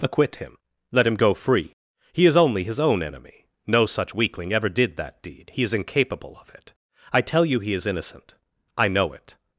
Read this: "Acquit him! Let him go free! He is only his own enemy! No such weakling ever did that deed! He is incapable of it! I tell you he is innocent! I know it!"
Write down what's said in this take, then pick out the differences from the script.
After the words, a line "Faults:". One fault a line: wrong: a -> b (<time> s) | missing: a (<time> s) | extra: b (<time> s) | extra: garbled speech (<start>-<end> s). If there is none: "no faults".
"Acquit him! Let him go free! He is only his own enemy! No such weakling ever did that deed! He is incapable of it! I tell you he is innocent! I know it!"
Faults:
no faults